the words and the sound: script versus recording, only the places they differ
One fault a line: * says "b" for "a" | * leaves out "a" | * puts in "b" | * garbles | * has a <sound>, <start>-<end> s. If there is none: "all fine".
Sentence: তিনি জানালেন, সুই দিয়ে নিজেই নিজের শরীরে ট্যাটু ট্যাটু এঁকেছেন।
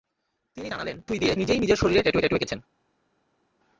all fine